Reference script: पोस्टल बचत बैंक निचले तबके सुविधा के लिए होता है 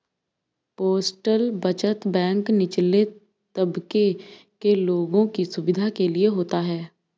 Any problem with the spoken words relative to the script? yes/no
yes